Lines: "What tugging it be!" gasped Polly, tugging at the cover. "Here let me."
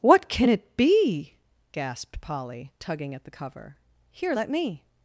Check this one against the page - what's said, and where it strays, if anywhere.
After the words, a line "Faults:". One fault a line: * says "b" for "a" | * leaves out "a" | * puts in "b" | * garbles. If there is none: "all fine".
"What can it be!" gasped Polly, tugging at the cover. "Here let me."
Faults:
* says "can" for "tugging"